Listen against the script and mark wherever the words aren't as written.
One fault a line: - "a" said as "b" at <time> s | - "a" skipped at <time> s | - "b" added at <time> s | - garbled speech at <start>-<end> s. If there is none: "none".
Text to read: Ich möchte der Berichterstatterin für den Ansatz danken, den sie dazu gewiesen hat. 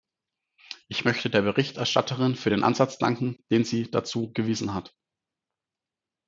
none